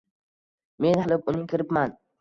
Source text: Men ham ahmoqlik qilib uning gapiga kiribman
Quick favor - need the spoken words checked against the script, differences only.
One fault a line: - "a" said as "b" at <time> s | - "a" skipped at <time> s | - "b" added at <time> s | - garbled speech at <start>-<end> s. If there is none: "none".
- "ham ahmoqlik" skipped at 1.0 s
- "gapiga" skipped at 1.5 s